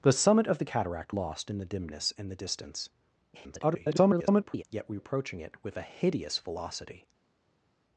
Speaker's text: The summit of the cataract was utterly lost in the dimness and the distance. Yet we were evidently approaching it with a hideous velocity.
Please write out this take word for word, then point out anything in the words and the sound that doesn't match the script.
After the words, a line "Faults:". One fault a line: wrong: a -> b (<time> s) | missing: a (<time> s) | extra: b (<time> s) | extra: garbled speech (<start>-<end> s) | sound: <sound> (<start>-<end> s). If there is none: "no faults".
The summit of the cataract lost in the dimness and the distance. [garbled] Yet we approaching it with a hideous velocity.
Faults:
missing: was utterly (1.1 s)
extra: garbled speech (3.3-4.6 s)
missing: were evidently (5.0 s)